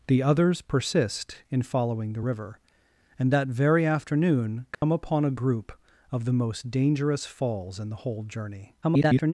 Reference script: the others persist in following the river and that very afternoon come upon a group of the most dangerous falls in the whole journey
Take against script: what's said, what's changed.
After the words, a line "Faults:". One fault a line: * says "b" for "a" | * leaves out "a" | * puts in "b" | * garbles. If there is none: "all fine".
the others persist in following the river and that very afternoon come upon a group of the most dangerous falls in the whole journey [garbled]
Faults:
* garbles